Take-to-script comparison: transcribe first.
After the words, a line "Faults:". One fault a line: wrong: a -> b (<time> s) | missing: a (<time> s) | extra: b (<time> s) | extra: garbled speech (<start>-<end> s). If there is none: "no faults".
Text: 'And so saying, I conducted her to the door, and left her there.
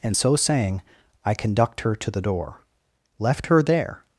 'And so saying, I conduct her to the door, left her there.
Faults:
wrong: conducted -> conduct (1.3 s)
missing: and (2.6 s)